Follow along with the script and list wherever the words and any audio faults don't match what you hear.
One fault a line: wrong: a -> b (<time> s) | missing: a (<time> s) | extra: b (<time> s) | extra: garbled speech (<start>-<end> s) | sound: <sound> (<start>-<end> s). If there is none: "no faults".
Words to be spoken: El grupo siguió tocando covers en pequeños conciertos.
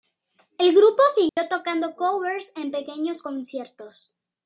sound: dropout (1.3-1.4 s)